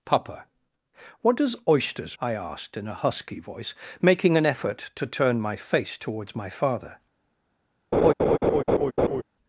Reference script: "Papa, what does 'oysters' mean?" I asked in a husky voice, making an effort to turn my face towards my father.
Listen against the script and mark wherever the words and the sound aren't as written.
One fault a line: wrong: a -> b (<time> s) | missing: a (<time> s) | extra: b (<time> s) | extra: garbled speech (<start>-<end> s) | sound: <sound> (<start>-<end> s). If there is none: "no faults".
missing: mean (2.2 s)
sound: laugh (7.9-9.2 s)